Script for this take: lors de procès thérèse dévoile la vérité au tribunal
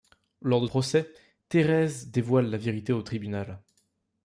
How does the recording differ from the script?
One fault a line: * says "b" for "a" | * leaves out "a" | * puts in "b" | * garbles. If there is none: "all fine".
all fine